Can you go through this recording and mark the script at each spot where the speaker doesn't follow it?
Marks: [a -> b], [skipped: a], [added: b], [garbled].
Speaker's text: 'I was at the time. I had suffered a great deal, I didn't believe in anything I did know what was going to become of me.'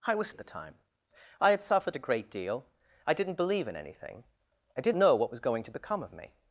'I was at the time. I had suffered a great deal, I didn't believe in anything I did know what was going to become of me.'